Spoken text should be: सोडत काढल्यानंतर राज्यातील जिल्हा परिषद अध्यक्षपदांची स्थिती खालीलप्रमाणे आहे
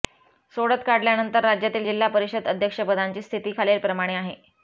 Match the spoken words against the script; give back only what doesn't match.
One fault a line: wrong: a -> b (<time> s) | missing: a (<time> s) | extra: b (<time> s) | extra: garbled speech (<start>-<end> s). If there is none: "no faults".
no faults